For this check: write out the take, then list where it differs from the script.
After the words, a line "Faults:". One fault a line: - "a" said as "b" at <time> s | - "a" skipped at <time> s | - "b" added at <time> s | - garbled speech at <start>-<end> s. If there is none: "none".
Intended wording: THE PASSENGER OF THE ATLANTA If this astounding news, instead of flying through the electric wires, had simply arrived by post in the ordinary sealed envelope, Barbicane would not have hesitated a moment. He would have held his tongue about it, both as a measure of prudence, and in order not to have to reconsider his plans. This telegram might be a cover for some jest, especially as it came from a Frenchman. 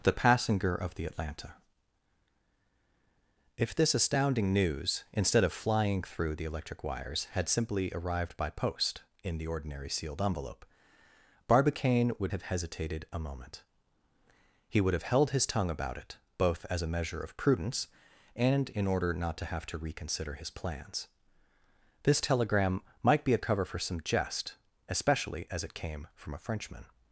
THE PASSENGER OF THE ATLANTA If this astounding news, instead of flying through the electric wires, had simply arrived by post in the ordinary sealed envelope, Barbicane would have hesitated a moment. He would have held his tongue about it, both as a measure of prudence, and in order not to have to reconsider his plans. This telegram might be a cover for some jest, especially as it came from a Frenchman.
Faults:
- "not" skipped at 12.3 s